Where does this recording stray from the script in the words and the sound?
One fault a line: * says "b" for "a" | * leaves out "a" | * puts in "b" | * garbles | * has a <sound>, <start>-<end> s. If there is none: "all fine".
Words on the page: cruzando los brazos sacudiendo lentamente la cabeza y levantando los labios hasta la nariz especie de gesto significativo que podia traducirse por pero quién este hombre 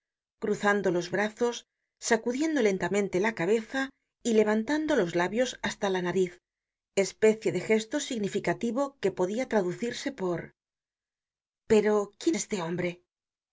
all fine